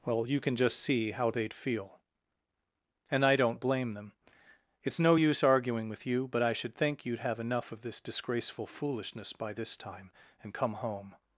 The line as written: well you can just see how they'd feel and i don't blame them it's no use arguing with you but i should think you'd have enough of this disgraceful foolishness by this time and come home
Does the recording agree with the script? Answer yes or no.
yes